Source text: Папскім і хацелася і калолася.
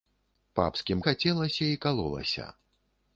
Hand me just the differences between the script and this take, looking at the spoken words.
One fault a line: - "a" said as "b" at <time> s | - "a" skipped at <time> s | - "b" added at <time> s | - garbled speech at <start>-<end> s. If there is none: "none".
none